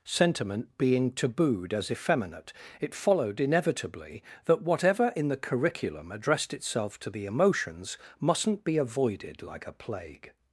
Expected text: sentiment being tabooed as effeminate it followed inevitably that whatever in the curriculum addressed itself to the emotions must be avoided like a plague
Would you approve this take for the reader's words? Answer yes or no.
no